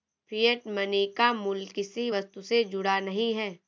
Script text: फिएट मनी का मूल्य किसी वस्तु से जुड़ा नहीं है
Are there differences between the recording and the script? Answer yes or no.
no